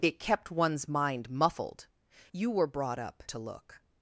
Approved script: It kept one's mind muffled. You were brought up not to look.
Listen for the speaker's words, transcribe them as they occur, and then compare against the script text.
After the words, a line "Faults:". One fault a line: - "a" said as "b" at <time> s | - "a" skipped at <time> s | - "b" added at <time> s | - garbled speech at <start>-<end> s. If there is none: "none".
It kept one's mind muffled. You were brought up to look.
Faults:
- "not" skipped at 3.2 s